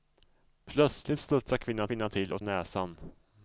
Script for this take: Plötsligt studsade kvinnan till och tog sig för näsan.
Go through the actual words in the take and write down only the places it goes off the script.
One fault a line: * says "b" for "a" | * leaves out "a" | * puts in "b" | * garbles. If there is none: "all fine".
* puts in "kvinnan"
* leaves out "tog sig för"